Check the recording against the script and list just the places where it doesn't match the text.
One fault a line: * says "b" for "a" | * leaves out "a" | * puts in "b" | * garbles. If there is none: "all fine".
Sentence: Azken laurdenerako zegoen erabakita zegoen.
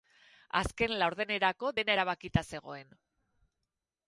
* says "dena" for "zegoen"